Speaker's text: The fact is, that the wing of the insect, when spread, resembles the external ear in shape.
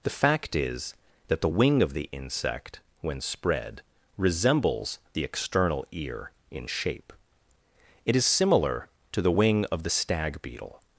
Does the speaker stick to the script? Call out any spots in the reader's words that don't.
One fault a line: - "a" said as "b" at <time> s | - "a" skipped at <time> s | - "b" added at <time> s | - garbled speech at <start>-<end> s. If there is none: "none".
- "It is similar to the wing of the stag beetle" added at 8.1 s